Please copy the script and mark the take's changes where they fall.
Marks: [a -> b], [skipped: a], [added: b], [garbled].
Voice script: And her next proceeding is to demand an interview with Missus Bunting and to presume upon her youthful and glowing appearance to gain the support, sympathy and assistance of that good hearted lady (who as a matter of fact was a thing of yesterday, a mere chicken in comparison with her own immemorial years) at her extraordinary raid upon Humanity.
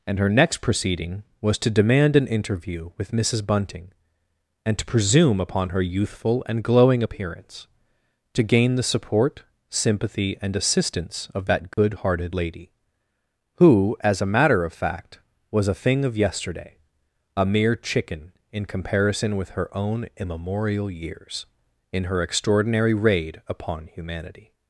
And her next proceeding [is -> was] to demand an interview with Missus Bunting and to presume upon her youthful and glowing appearance to gain the support, sympathy and assistance of that good hearted lady (who as a matter of fact was a thing of yesterday, a mere chicken in comparison with her own immemorial years) [at -> in] her extraordinary raid upon Humanity.